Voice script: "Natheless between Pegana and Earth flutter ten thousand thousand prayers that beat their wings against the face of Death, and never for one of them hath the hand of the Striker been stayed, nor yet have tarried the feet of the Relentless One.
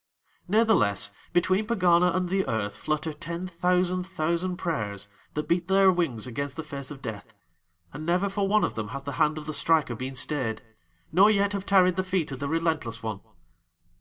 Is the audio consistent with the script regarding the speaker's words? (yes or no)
no